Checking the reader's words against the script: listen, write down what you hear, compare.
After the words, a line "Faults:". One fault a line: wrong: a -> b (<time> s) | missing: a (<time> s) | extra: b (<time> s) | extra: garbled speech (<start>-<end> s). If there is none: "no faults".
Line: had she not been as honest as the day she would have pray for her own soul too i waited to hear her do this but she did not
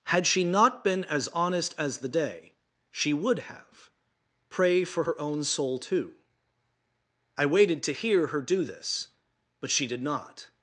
had she not been as honest as the day she would have pray for her own soul too i waited to hear her do this but she did not
Faults:
no faults